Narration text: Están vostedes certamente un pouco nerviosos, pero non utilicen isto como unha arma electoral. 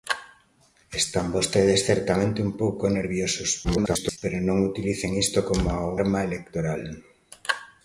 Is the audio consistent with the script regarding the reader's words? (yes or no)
no